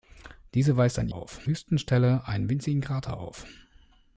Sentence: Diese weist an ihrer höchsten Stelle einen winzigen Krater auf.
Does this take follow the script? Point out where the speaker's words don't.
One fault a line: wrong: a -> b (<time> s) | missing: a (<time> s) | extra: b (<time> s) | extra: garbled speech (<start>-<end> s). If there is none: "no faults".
wrong: ihrer -> auf (1.1 s)